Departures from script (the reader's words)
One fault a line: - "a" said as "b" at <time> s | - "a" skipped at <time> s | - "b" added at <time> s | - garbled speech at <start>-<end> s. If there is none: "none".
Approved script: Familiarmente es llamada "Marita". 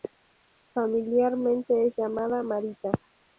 none